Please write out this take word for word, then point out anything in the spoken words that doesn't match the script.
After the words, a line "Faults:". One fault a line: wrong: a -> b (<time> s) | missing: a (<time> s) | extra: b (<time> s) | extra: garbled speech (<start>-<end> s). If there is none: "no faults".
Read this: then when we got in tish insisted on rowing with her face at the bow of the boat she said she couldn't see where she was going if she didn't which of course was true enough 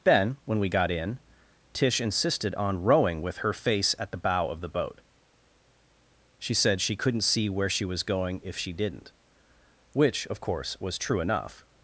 then when we got in tish insisted on rowing with her face at the bow of the boat she said she couldn't see where she was going if she didn't which of course was true enough
Faults:
no faults